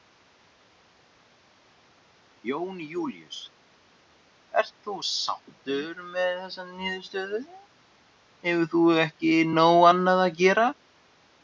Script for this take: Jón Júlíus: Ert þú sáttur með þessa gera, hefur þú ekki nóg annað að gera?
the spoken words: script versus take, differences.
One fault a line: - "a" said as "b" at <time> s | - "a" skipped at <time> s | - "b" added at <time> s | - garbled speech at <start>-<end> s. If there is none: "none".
- "gera" said as "niðurstöðu" at 6.7 s